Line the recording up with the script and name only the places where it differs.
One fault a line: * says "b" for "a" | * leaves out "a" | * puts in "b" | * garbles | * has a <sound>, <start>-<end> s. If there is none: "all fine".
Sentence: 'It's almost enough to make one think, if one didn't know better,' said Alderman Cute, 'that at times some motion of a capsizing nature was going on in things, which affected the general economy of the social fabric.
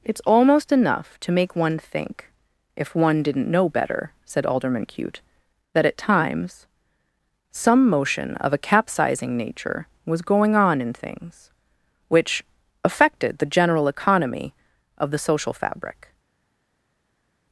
all fine